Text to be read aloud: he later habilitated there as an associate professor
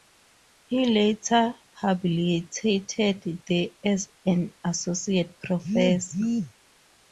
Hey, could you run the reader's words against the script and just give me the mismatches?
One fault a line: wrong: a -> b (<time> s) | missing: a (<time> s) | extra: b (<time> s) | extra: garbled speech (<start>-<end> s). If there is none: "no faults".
no faults